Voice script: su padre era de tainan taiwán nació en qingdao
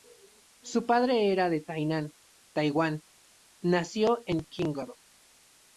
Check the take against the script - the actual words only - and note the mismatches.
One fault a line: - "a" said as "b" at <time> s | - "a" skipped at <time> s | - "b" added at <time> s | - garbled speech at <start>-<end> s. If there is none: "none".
none